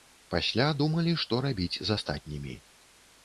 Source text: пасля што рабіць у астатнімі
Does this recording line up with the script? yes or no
no